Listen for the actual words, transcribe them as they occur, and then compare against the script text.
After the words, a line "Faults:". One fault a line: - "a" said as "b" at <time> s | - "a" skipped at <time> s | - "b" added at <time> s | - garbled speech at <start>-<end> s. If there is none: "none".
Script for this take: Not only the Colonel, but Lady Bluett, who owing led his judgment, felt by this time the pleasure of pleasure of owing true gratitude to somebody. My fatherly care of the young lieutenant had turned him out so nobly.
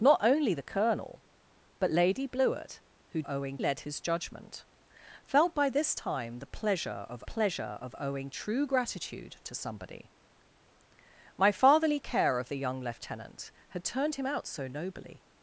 Not only the Colonel, but Lady Bluett, who owing led his judgment, felt by this time the pleasure of pleasure of owing true gratitude to somebody. My fatherly care of the young lieutenant had turned him out so nobly.
Faults:
none